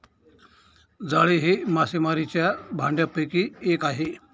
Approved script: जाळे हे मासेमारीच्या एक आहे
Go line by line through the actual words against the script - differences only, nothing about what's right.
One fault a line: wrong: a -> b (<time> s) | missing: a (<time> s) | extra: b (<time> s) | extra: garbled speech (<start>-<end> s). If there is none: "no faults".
extra: भांडयापैकी (2.7 s)